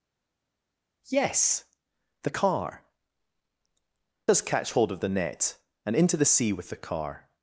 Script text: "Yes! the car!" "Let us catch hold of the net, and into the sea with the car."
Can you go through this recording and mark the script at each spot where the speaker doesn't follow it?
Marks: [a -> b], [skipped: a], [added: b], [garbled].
"Yes! the car!" [skipped: "Let] us catch hold of the net, and into the sea with the car."